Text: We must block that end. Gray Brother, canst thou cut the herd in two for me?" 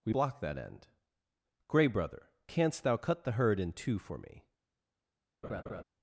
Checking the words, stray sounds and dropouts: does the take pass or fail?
fail